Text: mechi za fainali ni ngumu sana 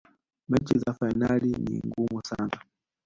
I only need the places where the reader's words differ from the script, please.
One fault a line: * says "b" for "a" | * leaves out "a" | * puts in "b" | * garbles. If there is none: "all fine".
all fine